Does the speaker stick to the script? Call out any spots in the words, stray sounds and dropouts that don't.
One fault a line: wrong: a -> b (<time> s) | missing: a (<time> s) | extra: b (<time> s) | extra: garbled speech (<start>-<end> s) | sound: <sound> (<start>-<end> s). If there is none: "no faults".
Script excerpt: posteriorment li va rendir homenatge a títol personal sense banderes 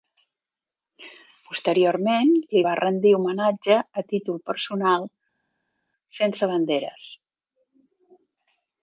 no faults